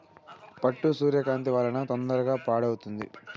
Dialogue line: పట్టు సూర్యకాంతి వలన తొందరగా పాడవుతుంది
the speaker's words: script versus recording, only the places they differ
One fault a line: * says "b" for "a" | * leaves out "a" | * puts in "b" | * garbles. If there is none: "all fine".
all fine